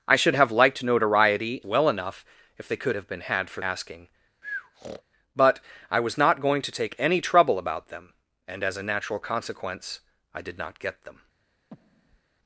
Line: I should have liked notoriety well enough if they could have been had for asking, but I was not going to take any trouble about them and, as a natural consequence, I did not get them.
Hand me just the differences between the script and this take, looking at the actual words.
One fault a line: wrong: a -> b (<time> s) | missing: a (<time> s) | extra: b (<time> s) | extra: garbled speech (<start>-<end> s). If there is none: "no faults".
no faults